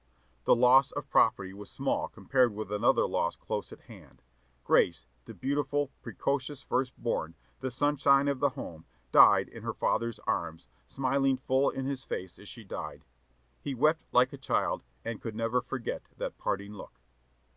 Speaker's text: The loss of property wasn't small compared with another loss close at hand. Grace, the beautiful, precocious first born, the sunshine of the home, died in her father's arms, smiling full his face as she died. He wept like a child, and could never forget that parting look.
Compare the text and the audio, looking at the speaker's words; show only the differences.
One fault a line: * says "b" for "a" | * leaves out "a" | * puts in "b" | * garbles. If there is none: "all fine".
* says "was" for "wasn't"
* puts in "in"